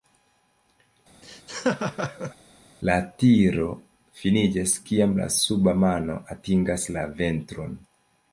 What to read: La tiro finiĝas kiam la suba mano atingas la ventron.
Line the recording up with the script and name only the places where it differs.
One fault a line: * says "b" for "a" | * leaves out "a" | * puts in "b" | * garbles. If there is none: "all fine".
all fine